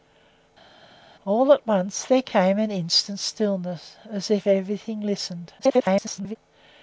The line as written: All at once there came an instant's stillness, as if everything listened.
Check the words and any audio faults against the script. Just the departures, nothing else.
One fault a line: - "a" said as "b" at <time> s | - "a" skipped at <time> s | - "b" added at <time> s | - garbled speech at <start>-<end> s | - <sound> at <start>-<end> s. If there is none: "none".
- garbled speech at 5.6-6.4 s